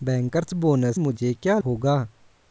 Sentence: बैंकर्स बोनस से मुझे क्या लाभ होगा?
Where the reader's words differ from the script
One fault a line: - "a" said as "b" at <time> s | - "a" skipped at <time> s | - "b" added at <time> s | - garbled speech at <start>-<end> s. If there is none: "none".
- "से" skipped at 1.0 s
- "लाभ" skipped at 1.6 s